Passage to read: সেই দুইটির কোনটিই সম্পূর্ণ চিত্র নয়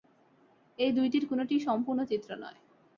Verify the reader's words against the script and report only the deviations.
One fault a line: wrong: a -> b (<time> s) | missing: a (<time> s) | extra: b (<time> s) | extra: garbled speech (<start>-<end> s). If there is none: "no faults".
wrong: সেই -> এই (0.8 s)